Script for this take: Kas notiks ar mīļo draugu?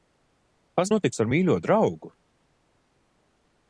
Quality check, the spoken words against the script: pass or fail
pass